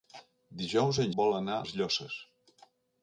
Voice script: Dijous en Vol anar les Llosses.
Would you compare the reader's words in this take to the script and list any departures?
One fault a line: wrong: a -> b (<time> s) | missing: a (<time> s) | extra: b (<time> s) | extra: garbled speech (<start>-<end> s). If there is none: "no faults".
no faults